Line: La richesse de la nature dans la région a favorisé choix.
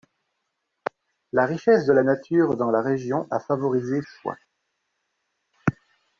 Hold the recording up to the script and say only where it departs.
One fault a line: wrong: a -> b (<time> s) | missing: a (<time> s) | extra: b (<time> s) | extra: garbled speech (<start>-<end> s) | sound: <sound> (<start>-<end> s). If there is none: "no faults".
no faults